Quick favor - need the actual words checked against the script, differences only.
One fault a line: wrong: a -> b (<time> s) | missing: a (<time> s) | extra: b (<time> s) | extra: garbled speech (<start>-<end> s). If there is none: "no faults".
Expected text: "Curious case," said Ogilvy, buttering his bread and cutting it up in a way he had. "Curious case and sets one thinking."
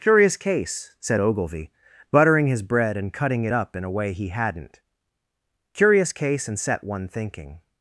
wrong: had -> hadn't (4.3 s)
wrong: sets -> set (6.6 s)